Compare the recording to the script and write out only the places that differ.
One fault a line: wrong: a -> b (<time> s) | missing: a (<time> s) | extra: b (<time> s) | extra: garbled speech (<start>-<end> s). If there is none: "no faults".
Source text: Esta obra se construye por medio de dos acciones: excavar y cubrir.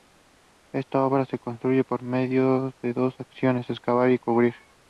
no faults